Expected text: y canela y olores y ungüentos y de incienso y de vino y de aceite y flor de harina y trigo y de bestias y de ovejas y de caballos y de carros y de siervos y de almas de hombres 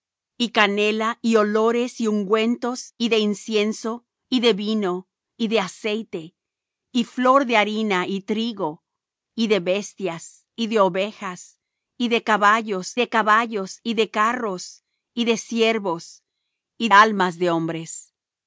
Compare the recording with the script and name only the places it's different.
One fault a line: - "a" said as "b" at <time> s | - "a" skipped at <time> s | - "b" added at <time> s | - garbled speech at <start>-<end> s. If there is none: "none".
- "de caballos" added at 13.0 s
- "de" skipped at 16.9 s